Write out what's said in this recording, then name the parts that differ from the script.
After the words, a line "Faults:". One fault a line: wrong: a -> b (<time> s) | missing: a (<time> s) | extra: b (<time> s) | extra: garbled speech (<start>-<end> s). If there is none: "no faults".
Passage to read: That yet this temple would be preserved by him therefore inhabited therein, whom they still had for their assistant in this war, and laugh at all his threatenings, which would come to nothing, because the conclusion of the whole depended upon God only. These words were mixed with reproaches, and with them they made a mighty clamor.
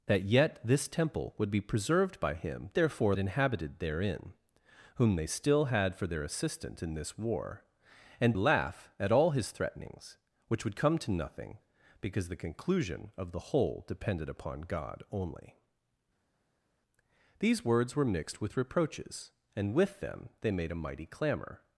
That yet this temple would be preserved by him therefore inhabited therein, whom they still had for their assistant in this war, and laugh at all his threatenings, which would come to nothing, because the conclusion of the whole depended upon God only. These words were mixed with reproaches, and with them they made a mighty clamor.
Faults:
no faults